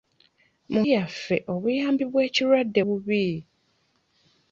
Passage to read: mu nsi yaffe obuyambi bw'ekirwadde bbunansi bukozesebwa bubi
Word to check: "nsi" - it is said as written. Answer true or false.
false